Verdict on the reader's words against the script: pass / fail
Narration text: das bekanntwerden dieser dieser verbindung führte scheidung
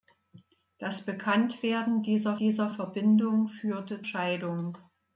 pass